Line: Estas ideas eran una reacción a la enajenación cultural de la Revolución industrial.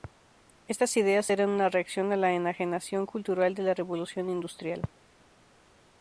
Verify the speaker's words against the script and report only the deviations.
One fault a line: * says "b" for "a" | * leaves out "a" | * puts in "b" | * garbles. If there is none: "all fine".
all fine